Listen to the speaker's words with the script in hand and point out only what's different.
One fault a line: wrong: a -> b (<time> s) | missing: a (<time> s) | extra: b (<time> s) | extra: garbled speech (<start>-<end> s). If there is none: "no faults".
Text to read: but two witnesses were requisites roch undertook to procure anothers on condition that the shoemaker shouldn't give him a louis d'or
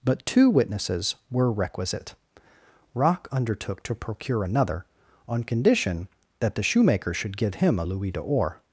wrong: requisites -> requisite (1.5 s)
wrong: anothers -> another (4.4 s)
wrong: shouldn't -> should (7.1 s)